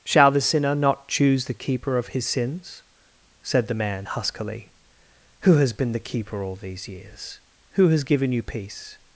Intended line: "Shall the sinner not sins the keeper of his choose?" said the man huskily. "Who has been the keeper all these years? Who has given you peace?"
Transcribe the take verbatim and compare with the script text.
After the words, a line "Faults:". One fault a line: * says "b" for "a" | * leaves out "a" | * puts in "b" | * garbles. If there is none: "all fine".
"Shall the sinner not choose the keeper of his sins?" said the man huskily. "Who has been the keeper all these years? Who has given you peace?"
Faults:
* says "choose" for "sins"
* says "sins" for "choose"